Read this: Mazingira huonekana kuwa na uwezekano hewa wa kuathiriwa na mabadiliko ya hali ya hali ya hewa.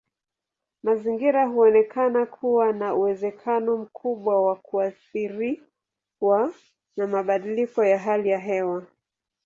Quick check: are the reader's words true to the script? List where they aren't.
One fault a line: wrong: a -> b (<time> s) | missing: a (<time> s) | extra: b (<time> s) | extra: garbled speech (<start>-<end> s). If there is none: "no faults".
wrong: hewa -> mkubwa (3.8 s)
missing: hali ya (8.4 s)